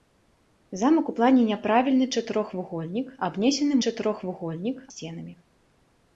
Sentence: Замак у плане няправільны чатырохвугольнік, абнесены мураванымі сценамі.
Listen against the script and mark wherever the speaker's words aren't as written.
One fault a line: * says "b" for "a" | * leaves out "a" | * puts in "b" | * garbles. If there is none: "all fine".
* says "чатырохвугольнік" for "мураванымі"